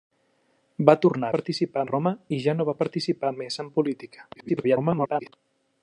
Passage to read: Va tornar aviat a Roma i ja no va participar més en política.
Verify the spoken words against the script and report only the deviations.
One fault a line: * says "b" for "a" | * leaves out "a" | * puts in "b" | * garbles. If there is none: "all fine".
* says "participar" for "aviat"
* garbles